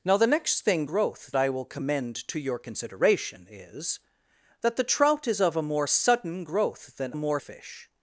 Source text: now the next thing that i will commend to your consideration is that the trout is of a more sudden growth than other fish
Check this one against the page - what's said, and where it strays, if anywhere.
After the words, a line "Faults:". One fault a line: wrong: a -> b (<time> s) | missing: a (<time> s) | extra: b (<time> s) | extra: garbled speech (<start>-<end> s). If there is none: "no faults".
now the next thing growth i will commend to your consideration is that the trout is of a more sudden growth than more fish
Faults:
wrong: that -> growth (0.8 s)
wrong: other -> more (7.1 s)